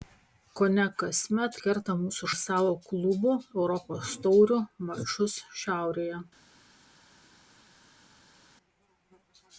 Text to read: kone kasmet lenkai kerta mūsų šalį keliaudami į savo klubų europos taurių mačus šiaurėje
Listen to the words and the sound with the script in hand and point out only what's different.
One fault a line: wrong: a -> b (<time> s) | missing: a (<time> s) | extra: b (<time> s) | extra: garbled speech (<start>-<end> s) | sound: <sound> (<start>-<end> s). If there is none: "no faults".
missing: lenkai (1.6 s)
missing: šalį keliaudami (2.3 s)